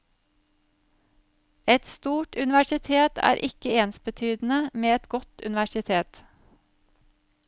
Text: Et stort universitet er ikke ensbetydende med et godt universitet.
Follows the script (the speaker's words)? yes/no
yes